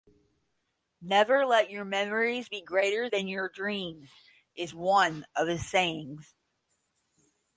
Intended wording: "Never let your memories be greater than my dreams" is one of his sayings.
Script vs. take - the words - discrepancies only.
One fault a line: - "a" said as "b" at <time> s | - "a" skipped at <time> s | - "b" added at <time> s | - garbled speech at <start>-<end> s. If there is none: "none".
- "my" said as "your" at 3.3 s